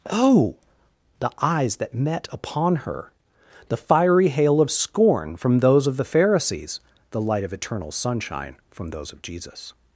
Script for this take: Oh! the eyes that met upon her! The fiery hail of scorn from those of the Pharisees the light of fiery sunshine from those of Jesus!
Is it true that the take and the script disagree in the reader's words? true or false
true